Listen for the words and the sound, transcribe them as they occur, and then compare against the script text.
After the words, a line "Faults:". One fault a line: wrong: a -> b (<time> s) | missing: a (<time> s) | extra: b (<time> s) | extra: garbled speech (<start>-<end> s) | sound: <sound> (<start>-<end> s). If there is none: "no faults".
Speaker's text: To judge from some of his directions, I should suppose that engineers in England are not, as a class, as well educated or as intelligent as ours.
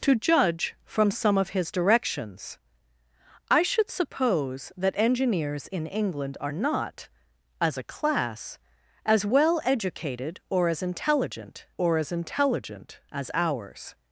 To judge from some of his directions, I should suppose that engineers in England are not, as a class, as well educated or as intelligent or as intelligent as ours.
Faults:
extra: or as intelligent (11.8 s)